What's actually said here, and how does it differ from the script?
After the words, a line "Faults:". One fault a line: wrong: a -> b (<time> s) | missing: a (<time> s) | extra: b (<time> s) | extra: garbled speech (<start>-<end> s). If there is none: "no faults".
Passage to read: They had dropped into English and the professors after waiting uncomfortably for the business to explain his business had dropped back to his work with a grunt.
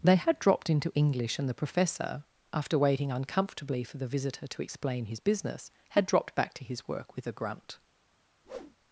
They had dropped into English and the professor after waiting uncomfortably for the visitor to explain his business had dropped back to his work with a grunt.
Faults:
wrong: professors -> professor (1.5 s)
wrong: business -> visitor (4.1 s)